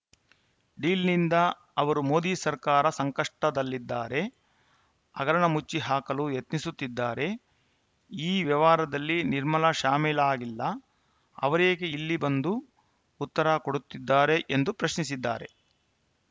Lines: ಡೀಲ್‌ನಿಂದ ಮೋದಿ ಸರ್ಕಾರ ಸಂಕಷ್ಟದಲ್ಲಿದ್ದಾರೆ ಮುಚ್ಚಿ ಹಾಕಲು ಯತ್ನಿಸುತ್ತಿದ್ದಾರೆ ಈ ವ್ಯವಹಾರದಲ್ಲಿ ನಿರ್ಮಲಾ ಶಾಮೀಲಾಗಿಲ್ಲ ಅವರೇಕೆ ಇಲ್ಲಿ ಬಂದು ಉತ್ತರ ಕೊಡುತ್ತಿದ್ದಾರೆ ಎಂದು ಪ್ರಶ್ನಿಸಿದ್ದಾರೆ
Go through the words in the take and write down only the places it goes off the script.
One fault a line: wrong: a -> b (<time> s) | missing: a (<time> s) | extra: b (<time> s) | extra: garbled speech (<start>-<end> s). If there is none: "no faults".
extra: ಅವರು (1.8 s)
extra: ಹಗರಣ (5.2 s)